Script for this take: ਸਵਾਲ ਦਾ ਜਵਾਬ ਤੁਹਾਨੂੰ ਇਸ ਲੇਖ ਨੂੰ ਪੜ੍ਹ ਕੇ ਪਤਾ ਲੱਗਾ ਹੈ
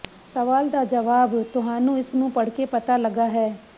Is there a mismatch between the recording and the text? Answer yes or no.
yes